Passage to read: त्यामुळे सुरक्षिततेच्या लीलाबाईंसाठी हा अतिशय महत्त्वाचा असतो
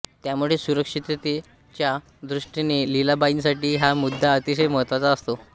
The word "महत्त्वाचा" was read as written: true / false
true